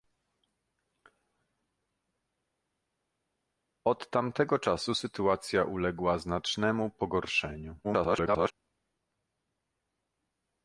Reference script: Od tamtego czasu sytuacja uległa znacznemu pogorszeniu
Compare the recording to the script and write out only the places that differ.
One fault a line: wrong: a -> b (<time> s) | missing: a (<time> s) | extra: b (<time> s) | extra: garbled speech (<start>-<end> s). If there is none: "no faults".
extra: garbled speech (7.8-8.5 s)